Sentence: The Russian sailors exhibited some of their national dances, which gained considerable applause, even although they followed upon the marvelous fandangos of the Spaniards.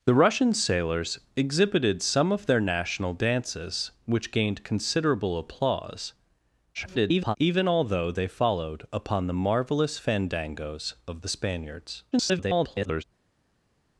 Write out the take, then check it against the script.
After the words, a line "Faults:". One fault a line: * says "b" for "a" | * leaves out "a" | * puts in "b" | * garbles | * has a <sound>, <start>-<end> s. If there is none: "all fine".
The Russian sailors exhibited some of their national dances, which gained considerable applause, [garbled] even although they followed upon the marvelous fandangos of the Spaniards. [garbled]
Faults:
* garbles
* garbles